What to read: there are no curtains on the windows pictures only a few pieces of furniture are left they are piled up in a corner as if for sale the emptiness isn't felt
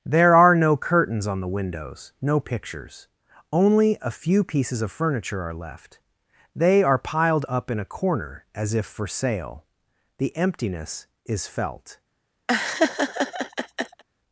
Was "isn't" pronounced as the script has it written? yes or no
no